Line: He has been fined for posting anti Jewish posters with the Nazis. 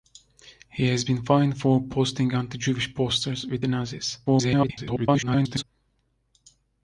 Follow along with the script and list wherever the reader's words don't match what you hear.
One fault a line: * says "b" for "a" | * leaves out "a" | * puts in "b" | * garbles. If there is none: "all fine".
* garbles